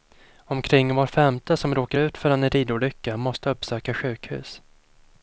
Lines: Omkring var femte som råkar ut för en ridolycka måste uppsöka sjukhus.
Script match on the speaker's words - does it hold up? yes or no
yes